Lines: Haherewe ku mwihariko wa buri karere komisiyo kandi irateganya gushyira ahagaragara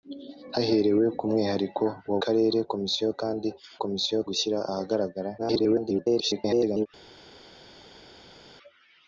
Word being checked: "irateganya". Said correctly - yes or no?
no